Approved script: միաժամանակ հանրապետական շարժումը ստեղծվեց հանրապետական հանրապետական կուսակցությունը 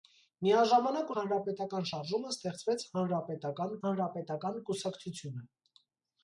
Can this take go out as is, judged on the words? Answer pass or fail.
pass